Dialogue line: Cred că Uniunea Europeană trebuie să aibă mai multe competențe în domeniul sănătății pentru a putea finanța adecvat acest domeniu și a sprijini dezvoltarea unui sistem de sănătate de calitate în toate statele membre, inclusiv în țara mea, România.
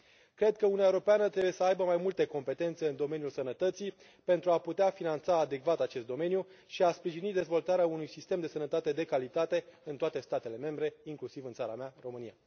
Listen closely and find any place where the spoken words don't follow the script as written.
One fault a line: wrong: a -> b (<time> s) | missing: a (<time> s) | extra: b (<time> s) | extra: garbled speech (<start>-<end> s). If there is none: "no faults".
no faults